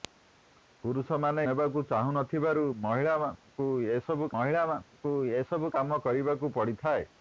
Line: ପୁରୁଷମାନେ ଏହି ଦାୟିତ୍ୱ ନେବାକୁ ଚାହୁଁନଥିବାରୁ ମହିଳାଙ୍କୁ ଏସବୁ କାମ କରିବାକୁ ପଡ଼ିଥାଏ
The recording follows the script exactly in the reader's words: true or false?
false